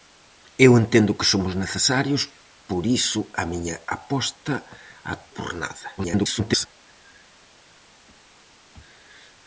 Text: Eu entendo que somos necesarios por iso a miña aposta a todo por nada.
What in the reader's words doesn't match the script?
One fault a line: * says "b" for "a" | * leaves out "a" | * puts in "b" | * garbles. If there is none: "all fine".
* leaves out "todo"
* garbles